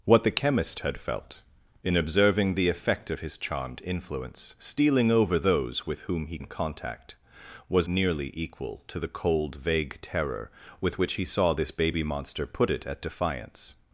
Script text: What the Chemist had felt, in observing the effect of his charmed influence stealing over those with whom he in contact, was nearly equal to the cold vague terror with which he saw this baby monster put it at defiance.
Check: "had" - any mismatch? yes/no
no